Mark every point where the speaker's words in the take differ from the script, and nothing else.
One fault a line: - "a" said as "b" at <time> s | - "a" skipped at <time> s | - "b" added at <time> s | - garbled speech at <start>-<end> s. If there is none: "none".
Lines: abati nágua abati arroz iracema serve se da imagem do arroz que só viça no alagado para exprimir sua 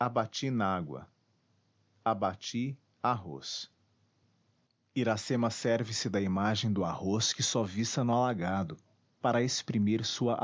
none